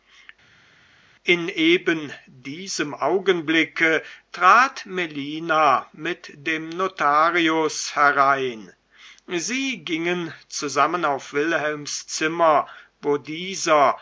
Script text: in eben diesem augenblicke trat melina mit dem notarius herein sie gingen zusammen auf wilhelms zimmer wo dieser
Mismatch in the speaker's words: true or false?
false